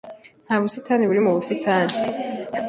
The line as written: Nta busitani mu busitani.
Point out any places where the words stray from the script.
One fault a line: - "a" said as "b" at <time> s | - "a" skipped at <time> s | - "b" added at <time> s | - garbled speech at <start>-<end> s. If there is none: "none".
- "buri" added at 1.1 s